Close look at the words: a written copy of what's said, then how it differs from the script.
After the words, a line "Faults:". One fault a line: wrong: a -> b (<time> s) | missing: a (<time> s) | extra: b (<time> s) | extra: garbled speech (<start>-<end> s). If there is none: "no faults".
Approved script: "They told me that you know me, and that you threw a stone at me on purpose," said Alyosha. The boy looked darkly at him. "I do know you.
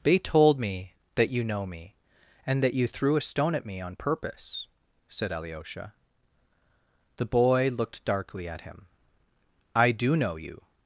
"They told me that you know me, and that you threw a stone at me on purpose," said Alyosha. The boy looked darkly at him. "I do know you.
Faults:
no faults